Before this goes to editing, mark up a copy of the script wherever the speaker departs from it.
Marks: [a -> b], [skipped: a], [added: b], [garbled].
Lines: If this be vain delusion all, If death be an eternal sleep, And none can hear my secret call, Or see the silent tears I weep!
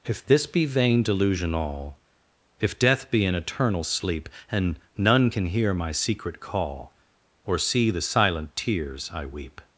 If this be vain delusion all, If death be an eternal sleep, And none can hear my secret call, Or see the silent tears I weep!